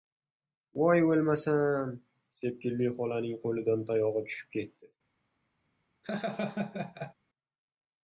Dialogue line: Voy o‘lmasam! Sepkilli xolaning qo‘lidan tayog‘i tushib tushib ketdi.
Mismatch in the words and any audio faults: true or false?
true